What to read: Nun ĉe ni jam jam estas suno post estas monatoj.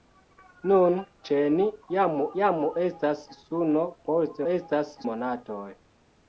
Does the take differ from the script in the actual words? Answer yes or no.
no